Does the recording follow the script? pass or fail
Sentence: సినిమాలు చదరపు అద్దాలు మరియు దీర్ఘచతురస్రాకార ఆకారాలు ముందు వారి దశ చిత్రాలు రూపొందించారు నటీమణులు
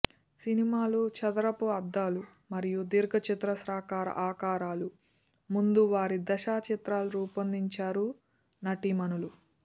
pass